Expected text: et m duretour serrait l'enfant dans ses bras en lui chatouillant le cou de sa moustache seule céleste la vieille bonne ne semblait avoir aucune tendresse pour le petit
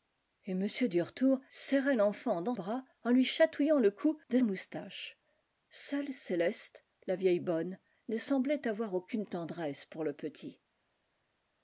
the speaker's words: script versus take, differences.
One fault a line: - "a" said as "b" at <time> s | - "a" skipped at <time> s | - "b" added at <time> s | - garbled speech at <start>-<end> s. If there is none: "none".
- "ses" skipped at 2.5 s
- "sa" skipped at 4.4 s